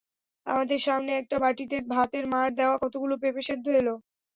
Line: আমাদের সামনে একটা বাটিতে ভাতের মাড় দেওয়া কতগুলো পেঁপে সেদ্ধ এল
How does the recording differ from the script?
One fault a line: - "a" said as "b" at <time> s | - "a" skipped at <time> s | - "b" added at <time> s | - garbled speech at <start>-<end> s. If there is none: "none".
none